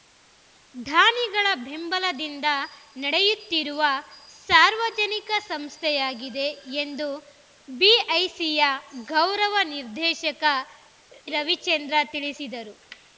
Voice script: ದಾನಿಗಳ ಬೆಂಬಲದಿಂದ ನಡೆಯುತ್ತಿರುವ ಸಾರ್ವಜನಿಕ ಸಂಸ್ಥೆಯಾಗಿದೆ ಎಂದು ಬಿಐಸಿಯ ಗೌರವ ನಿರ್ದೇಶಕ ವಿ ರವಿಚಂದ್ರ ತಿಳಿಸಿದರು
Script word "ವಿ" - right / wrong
wrong